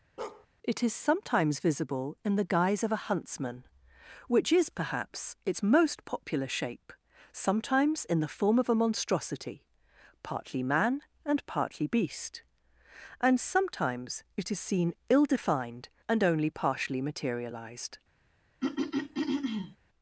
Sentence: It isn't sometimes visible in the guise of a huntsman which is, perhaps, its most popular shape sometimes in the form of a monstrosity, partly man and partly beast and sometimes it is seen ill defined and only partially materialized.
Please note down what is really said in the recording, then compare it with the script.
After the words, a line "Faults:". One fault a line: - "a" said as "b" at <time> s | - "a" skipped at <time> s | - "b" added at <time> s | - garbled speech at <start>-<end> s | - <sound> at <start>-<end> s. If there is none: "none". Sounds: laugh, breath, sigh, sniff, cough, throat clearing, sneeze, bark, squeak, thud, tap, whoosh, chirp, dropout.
It is sometimes visible in the guise of a huntsman which is, perhaps, its most popular shape sometimes in the form of a monstrosity, partly man and partly beast and sometimes it is seen ill defined and only partially materialized.
Faults:
- bark at 0.2-0.5 s
- "isn't" said as "is" at 0.8 s
- throat clearing at 18.6-19.8 s